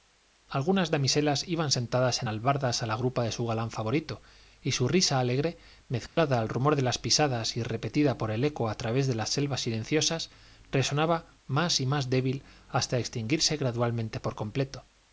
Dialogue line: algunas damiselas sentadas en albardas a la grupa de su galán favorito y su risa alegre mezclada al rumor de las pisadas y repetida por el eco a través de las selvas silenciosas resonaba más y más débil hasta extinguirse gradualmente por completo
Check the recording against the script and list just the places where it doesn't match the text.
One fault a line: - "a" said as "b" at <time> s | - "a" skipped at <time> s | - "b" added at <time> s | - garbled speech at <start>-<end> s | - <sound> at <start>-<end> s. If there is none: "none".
- "iban" added at 1.5 s
- dropout at 6.1-6.2 s